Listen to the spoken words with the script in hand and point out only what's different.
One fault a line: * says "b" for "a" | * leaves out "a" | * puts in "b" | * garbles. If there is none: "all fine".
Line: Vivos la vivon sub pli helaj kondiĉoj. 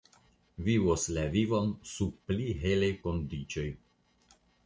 all fine